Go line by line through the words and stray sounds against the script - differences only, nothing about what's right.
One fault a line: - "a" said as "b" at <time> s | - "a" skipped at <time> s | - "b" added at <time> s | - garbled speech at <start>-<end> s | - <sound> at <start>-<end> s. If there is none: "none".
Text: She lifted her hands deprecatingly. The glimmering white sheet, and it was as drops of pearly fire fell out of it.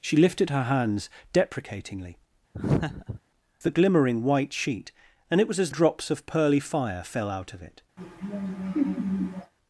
- laugh at 2.5-3.2 s
- laugh at 8.0-9.5 s